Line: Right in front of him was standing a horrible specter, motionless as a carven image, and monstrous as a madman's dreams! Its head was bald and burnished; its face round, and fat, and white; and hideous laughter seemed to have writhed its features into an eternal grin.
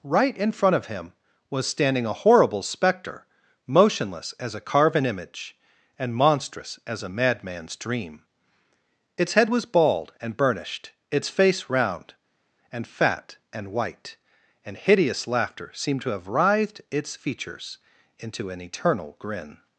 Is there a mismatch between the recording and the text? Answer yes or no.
yes